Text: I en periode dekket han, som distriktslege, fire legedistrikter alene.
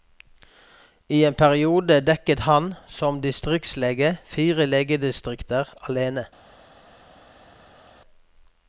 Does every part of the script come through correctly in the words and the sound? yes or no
yes